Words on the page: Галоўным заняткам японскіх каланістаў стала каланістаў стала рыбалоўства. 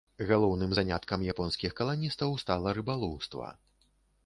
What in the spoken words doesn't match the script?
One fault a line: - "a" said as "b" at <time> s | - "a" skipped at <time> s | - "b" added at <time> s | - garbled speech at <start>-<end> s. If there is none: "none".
- "каланістаў стала" skipped at 2.8 s